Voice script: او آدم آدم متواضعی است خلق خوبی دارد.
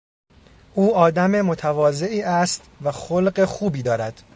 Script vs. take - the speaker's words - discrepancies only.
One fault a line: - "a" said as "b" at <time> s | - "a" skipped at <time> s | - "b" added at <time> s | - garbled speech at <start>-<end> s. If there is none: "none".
- "آدم" skipped at 1.4 s
- "و" added at 2.8 s